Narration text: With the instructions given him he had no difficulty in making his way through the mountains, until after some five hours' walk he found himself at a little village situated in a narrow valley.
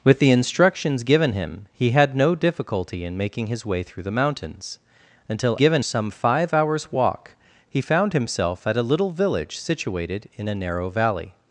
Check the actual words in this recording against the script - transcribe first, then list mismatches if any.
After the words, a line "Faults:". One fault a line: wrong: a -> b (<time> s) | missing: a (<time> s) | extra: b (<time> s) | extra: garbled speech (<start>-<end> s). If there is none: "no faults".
With the instructions given him he had no difficulty in making his way through the mountains, until given some five hours' walk he found himself at a little village situated in a narrow valley.
Faults:
wrong: after -> given (5.5 s)